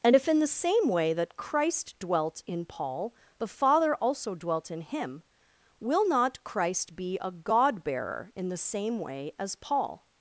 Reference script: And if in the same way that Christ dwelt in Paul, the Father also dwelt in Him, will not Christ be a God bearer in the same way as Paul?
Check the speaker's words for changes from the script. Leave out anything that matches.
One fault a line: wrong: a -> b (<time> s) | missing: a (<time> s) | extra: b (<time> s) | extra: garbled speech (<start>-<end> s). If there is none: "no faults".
no faults